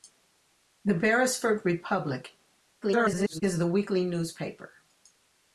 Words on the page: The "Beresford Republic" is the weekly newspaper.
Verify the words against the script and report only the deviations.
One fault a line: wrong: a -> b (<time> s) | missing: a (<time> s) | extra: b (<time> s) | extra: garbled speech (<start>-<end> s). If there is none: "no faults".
extra: garbled speech (2.8-3.4 s)